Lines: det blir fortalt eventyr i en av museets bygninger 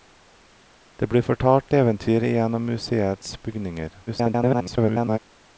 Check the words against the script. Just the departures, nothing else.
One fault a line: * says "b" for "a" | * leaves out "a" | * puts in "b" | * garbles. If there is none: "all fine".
* garbles